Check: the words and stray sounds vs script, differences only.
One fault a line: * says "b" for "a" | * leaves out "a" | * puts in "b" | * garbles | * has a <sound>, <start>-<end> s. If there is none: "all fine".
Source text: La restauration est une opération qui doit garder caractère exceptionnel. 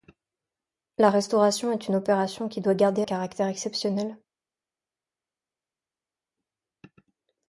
all fine